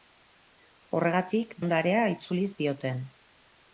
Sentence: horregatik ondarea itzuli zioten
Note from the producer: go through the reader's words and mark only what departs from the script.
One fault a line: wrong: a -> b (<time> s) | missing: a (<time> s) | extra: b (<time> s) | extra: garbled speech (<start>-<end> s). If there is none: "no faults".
no faults